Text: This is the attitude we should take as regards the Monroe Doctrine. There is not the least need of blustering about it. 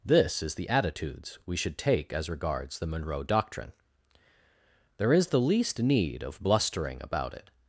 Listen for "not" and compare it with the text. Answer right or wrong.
wrong